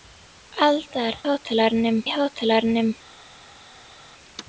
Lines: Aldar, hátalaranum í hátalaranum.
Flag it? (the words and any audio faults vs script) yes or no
no